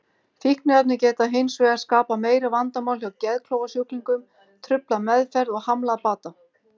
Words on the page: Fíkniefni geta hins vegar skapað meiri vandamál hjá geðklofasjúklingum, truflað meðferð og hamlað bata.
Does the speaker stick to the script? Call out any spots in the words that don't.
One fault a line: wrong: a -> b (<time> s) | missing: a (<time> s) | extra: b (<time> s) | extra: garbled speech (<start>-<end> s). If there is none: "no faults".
no faults